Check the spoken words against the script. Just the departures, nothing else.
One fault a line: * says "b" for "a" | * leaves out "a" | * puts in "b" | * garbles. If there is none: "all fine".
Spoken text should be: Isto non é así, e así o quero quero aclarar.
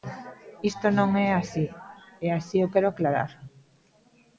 * leaves out "quero"